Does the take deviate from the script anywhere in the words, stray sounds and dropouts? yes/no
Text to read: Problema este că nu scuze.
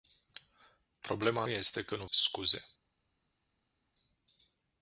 no